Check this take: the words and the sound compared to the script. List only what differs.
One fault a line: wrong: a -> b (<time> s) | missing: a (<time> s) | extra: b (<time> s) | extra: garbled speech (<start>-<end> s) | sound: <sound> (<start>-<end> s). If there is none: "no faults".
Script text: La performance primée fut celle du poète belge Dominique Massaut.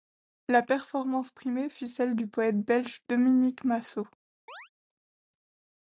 sound: chirp (4.5-4.7 s)